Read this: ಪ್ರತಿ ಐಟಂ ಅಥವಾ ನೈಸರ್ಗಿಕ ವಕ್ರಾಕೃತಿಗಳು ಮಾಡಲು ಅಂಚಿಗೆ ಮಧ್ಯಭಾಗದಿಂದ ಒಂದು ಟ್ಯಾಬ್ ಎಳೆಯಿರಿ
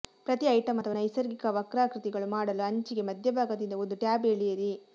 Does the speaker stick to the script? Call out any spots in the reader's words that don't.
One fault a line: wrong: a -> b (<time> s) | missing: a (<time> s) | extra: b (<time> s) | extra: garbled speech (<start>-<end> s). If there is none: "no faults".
no faults